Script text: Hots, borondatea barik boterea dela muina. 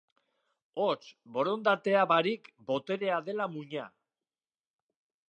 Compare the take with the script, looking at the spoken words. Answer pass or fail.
pass